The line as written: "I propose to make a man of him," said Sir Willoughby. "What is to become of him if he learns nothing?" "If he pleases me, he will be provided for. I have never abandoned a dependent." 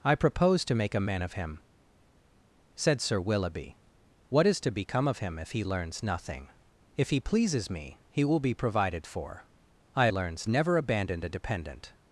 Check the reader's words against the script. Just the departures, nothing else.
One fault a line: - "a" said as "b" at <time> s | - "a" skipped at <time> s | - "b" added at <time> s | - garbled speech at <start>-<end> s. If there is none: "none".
- "have" said as "learns" at 10.1 s